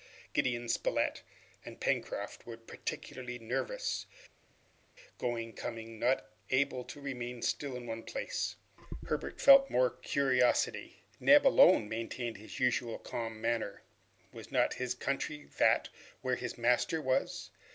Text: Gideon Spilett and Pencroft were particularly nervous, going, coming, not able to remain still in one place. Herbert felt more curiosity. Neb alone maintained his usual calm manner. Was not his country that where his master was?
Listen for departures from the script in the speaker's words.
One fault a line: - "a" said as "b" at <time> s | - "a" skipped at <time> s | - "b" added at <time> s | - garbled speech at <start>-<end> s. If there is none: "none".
none